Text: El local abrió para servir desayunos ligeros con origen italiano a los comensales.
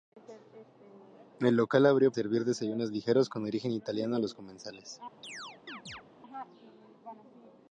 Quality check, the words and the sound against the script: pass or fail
fail